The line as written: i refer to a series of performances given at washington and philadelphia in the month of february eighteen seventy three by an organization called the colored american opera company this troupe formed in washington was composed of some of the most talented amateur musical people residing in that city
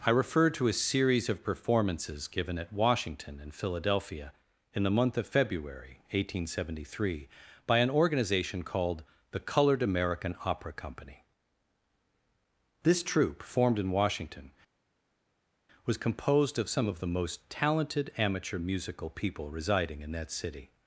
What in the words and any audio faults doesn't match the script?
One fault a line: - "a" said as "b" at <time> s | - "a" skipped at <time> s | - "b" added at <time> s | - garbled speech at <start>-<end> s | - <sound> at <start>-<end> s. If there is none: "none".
none